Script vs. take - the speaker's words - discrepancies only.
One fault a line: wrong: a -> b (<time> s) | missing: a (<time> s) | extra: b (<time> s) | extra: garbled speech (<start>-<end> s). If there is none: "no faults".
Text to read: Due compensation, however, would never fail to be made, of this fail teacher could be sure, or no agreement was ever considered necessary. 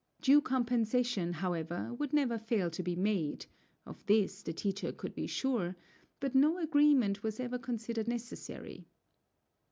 wrong: fail -> the (4.4 s)
wrong: or -> but (6.2 s)